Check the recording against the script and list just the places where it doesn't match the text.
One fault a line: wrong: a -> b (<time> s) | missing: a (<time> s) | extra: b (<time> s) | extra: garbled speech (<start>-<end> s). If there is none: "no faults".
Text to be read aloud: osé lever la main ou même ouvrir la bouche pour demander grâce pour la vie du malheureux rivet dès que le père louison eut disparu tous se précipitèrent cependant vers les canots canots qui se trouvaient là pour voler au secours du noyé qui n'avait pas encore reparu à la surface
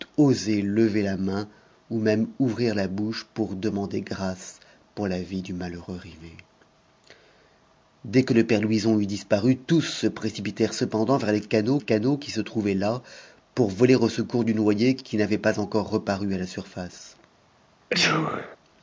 no faults